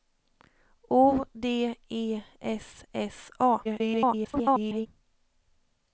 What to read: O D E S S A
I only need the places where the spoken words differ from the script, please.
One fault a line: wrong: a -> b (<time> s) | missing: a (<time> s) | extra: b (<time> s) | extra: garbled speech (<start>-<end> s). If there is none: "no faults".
extra: garbled speech (3.6-4.9 s)